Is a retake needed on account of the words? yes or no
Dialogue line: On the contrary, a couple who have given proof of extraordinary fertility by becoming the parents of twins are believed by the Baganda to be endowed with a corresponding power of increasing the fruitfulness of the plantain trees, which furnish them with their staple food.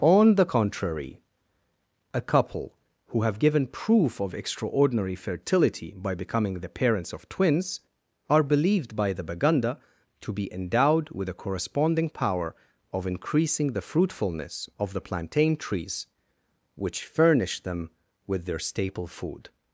no